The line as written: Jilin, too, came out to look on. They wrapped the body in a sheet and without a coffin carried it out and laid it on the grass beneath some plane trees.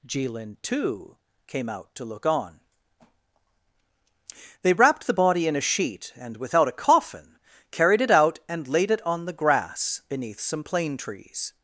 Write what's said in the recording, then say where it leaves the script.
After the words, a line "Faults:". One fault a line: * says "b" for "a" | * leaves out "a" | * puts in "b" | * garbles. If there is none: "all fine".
Jilin, too, came out to look on. They wrapped the body in a sheet and without a coffin carried it out and laid it on the grass beneath some plane trees.
Faults:
all fine